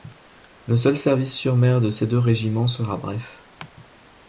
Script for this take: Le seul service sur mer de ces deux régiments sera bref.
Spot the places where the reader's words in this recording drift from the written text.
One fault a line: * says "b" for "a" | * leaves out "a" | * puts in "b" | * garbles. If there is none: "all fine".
all fine